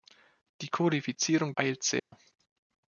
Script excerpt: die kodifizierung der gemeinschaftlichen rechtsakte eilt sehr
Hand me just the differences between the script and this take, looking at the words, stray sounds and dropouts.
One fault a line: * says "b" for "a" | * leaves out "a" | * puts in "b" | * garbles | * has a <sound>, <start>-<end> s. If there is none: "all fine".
* leaves out "der gemeinschaftlichen rechtsakte"
* has a dropout, 2.0-2.1 s